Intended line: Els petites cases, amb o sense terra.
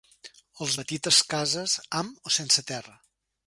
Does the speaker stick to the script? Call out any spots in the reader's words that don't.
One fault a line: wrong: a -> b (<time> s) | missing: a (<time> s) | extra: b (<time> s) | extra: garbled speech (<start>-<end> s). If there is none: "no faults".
no faults